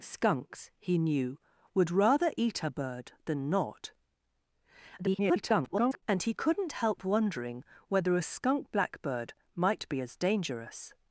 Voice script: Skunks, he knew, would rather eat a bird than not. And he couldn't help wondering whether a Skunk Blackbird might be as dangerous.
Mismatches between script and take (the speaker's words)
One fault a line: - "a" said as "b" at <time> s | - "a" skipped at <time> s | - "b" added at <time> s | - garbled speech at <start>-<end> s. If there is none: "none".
- garbled speech at 5.0-6.0 s